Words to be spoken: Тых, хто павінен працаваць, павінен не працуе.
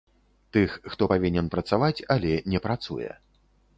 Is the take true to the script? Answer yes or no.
no